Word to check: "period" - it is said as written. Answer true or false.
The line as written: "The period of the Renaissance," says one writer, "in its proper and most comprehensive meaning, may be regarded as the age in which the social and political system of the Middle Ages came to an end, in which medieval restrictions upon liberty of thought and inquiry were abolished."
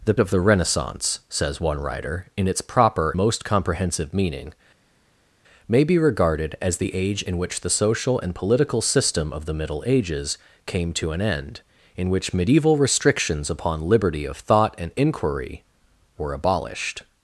false